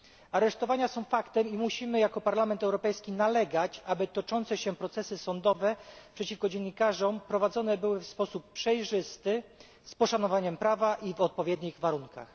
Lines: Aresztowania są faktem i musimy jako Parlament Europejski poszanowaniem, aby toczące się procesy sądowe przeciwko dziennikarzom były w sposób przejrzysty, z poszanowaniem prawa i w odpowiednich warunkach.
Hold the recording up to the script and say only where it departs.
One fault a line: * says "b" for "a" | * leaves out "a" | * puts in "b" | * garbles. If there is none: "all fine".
* says "nalegać" for "poszanowaniem"
* puts in "prowadzone"